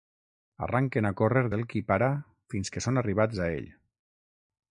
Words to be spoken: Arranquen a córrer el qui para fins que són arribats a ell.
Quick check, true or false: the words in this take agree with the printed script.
true